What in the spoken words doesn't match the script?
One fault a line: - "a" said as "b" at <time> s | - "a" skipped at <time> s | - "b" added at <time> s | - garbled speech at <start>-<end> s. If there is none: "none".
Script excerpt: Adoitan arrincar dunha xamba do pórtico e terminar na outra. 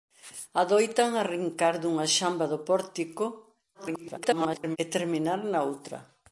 - garbled speech at 3.7-4.8 s